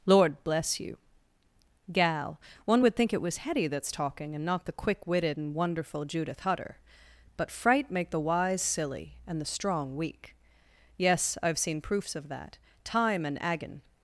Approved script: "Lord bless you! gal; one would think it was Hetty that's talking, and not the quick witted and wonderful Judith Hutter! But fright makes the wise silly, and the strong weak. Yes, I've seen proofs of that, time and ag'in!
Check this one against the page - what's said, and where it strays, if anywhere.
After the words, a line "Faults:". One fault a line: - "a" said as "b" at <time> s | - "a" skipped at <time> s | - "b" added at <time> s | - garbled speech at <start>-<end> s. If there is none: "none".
"Lord bless you! gal; one would think it was Hetty that's talking, and not the quick witted and wonderful Judith Hutter! But fright make the wise silly, and the strong weak. Yes, I've seen proofs of that, time and ag'in!
Faults:
- "makes" said as "make" at 7.9 s